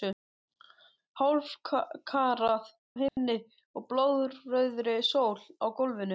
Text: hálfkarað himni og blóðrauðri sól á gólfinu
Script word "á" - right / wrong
right